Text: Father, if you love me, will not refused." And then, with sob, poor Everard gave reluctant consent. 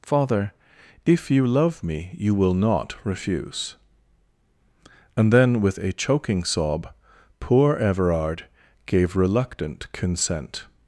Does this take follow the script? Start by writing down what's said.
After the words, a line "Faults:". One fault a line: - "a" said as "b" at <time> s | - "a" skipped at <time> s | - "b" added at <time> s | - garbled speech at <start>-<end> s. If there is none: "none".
Father, if you love me, you will not refuse." And then, with a choking sob, poor Everard gave reluctant consent.
Faults:
- "you" added at 2.1 s
- "refused" said as "refuse" at 3.0 s
- "a choking" added at 5.8 s